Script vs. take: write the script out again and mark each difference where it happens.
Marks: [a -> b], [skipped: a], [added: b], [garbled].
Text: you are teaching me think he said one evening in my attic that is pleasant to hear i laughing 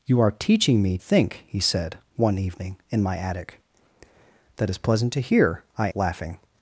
you are teaching me think he said one evening in my attic that is pleasant to hear i laughing